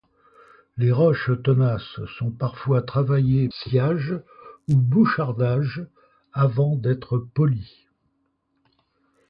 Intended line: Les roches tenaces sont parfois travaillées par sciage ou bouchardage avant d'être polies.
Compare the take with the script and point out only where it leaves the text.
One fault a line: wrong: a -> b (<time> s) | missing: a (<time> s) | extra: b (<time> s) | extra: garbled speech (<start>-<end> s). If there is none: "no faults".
missing: par (3.5 s)